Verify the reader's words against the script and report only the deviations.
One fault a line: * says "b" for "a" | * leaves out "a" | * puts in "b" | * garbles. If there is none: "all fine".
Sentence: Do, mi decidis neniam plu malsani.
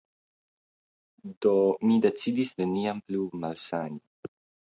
all fine